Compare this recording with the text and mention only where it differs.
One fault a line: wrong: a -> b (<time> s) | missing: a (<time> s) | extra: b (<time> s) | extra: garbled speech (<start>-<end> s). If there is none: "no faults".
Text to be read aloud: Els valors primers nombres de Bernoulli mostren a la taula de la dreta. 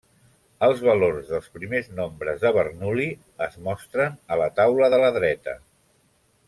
extra: dels (1.3 s)
extra: es (3.5 s)